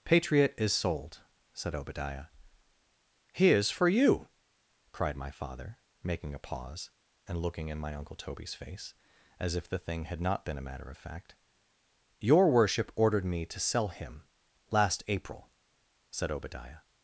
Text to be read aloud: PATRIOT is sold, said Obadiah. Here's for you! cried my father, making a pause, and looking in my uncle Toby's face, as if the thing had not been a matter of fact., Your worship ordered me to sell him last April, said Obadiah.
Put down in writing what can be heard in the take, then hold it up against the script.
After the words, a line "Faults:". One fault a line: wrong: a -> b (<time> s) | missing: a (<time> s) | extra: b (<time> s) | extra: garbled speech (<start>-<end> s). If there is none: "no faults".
PATRIOT is sold, said Obadiah. Here's for you! cried my father, making a pause, and looking in my uncle Toby's face, as if the thing had not been a matter of fact., Your worship ordered me to sell him last April, said Obadiah.
Faults:
no faults